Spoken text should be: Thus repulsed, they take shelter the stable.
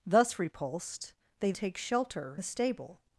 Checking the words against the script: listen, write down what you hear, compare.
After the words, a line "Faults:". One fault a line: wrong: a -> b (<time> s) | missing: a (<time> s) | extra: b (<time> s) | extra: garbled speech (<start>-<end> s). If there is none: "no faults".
Thus repulsed, they take shelter the stable.
Faults:
no faults